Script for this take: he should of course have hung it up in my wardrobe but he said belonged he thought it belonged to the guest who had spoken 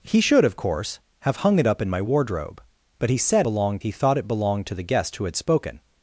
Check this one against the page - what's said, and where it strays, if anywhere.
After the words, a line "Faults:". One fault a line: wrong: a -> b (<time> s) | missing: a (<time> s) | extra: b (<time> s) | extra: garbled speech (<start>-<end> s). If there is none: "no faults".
he should of course have hung it up in my wardrobe but he said belonged he thought it belonged to the guest who had spoken
Faults:
no faults